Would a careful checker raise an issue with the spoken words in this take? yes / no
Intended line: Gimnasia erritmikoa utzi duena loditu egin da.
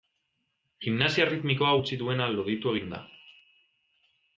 no